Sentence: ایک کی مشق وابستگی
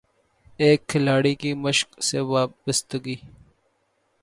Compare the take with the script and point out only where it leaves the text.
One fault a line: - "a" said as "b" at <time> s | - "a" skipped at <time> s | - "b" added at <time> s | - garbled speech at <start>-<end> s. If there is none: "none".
- "کھلاڑی" added at 0.9 s
- "سے" added at 2.0 s